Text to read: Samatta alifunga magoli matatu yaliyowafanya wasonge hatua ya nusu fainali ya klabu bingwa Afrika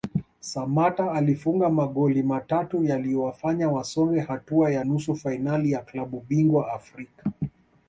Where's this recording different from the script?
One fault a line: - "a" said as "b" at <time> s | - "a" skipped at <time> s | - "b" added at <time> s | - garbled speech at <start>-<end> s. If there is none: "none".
none